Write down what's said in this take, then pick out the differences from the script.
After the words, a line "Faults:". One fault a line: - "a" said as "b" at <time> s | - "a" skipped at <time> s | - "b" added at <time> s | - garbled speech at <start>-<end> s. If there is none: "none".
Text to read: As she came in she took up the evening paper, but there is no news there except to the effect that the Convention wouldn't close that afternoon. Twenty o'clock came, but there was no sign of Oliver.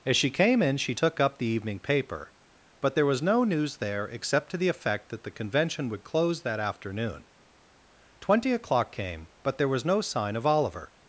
As she came in she took up the evening paper, but there was no news there except to the effect that the Convention would close that afternoon. Twenty o'clock came, but there was no sign of Oliver.
Faults:
- "is" said as "was" at 3.0 s
- "wouldn't" said as "would" at 5.9 s